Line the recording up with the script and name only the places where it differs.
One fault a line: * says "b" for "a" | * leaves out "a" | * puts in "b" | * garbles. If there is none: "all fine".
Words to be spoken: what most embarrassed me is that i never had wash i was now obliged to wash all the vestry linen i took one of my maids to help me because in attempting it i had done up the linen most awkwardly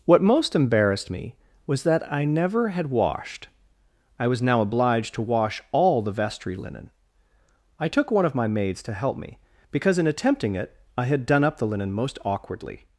* says "was" for "is"
* says "washed" for "wash"